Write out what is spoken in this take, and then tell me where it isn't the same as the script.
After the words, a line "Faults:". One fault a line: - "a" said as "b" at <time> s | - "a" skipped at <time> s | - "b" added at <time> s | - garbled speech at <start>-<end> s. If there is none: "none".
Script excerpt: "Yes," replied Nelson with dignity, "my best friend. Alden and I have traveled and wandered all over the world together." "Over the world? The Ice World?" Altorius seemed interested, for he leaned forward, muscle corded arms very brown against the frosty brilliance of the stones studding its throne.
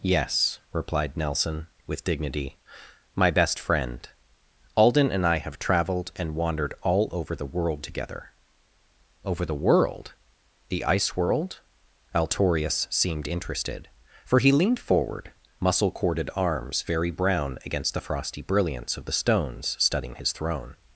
"Yes," replied Nelson with dignity, "my best friend. Alden and I have traveled and wandered all over the world together." "Over the world? The Ice World?" Altorius seemed interested, for he leaned forward, muscle corded arms very brown against the frosty brilliance of the stones studding his throne.
Faults:
- "its" said as "his" at 20.1 s